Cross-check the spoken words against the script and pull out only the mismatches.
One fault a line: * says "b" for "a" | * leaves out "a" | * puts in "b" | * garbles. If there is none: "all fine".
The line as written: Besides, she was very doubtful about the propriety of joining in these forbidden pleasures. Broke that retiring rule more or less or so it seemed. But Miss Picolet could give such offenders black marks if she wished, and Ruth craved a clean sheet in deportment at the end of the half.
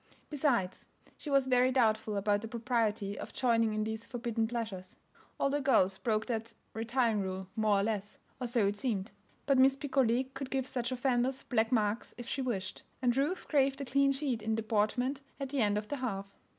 * puts in "All the girls"